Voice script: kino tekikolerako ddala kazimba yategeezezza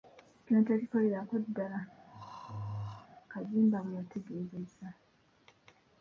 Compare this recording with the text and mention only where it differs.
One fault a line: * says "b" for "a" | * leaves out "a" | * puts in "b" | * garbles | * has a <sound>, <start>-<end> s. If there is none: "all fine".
* has a throat clearing, 2.1-3.1 s
* puts in "bwe"